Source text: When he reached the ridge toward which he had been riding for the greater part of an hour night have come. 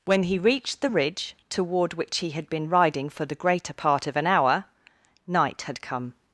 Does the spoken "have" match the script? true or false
false